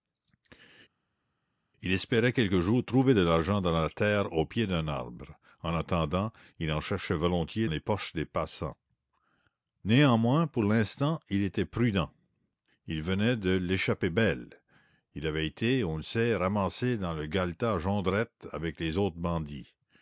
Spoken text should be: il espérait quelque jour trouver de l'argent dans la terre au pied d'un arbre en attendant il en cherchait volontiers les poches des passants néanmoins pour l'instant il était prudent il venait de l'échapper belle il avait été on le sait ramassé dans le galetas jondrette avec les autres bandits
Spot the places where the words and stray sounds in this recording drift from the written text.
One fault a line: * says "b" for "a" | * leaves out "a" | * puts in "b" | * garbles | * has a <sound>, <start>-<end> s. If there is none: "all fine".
all fine